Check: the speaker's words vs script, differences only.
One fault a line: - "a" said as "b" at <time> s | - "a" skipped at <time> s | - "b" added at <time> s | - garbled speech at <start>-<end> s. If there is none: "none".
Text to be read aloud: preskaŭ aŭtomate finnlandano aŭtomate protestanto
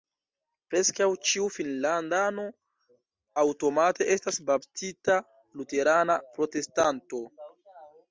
- "aŭtomate" said as "ĉiu" at 1.3 s
- "estas baptita luterana" added at 4.2 s